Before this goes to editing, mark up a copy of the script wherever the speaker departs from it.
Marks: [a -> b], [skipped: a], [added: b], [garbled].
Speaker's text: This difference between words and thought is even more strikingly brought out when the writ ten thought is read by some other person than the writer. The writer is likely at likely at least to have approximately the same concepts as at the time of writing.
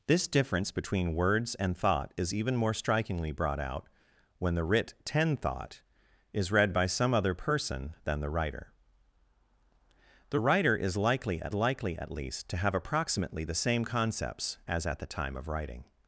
This difference between words and thought is even more strikingly brought out when the writ ten thought is read by some other person than the writer. The writer is likely at likely at least to have approximately the same concepts as at the time of writing.